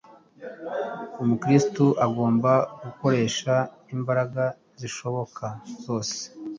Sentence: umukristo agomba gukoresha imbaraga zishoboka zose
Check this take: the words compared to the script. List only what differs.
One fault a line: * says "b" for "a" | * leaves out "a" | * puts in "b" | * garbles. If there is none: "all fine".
all fine